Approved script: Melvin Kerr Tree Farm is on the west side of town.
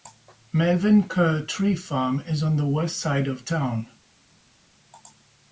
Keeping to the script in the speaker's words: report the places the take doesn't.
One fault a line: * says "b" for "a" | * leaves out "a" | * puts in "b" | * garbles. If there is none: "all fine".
all fine